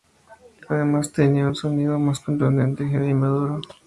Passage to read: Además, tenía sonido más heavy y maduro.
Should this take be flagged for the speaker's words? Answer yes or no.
yes